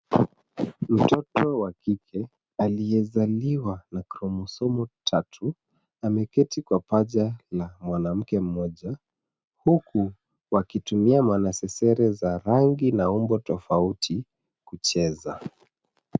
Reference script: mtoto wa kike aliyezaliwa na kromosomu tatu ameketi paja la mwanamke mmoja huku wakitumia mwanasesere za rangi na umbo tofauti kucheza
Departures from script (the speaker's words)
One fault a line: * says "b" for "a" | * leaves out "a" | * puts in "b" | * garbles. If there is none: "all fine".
* puts in "kwa"